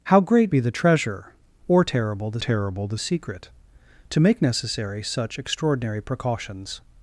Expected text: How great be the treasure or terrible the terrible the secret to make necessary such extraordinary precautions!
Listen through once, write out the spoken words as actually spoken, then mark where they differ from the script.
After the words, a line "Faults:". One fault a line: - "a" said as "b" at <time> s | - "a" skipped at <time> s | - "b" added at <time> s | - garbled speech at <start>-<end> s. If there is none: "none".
How great be the treasure or terrible the terrible the secret to make necessary such extraordinary precautions!
Faults:
none